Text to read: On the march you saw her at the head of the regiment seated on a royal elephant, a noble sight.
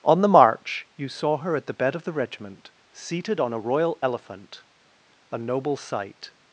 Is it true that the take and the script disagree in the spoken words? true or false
true